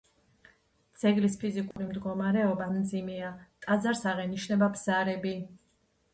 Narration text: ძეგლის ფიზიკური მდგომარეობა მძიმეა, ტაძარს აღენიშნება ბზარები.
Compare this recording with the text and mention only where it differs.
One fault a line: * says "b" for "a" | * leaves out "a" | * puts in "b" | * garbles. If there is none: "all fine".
all fine